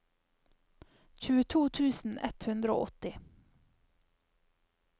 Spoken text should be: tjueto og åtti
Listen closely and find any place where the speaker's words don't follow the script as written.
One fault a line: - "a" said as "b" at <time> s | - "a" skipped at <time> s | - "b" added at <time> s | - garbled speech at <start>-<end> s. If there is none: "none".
- "tusen ett hundre" added at 1.8 s